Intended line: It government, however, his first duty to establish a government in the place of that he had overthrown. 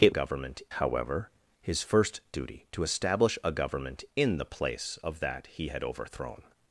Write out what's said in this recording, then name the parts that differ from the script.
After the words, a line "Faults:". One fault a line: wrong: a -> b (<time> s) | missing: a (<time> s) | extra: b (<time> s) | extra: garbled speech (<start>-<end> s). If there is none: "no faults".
It government, however, his first duty to establish a government in the place of that he had overthrown.
Faults:
no faults